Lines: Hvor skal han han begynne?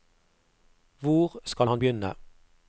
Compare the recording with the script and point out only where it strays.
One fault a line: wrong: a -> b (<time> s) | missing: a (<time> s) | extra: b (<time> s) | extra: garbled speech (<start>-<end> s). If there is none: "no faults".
missing: han (1.8 s)